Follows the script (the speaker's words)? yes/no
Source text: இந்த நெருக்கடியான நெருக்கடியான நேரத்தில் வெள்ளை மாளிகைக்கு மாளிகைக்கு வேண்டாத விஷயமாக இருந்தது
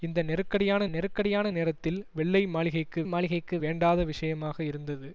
yes